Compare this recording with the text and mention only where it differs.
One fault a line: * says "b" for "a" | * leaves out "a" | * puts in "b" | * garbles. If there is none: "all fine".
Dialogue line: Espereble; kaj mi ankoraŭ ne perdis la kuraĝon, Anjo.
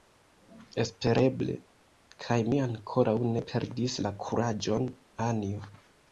all fine